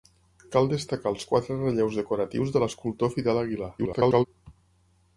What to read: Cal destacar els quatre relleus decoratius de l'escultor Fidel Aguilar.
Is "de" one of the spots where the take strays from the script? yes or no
no